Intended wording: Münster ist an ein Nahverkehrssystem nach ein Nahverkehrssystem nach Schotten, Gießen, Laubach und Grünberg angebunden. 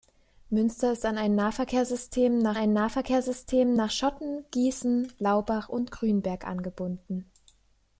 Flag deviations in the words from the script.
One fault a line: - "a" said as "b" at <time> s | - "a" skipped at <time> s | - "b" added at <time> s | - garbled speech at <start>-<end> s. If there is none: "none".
none